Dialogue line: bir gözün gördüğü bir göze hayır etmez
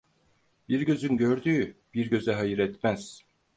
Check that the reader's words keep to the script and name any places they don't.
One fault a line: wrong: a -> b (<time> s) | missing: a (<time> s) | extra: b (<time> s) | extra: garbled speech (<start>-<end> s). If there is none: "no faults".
no faults